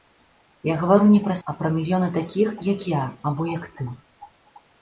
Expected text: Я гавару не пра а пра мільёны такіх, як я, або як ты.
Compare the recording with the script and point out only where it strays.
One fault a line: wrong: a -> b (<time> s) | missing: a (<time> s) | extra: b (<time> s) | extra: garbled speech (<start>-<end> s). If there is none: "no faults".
no faults